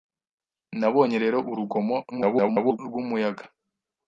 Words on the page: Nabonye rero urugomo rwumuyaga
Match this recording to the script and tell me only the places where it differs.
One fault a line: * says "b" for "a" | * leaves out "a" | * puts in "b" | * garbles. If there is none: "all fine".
* garbles